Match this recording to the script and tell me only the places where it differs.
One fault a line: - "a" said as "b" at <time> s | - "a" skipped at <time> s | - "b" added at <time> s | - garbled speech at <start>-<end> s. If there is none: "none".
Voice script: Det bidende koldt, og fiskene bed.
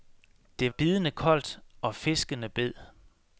none